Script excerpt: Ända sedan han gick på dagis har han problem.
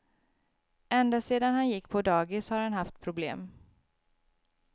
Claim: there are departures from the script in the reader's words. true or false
true